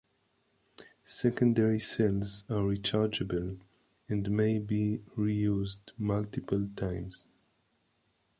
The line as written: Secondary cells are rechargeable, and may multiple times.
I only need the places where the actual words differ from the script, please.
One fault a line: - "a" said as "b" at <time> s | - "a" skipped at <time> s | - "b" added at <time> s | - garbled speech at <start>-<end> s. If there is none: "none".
- "be reused" added at 4.6 s